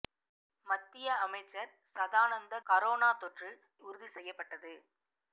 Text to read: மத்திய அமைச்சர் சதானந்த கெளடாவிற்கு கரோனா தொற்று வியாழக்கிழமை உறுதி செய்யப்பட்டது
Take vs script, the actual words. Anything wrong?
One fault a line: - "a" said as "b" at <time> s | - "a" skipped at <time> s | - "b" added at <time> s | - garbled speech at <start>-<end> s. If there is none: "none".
- "கெளடாவிற்கு" skipped at 2.6 s
- "வியாழக்கிழமை" skipped at 3.5 s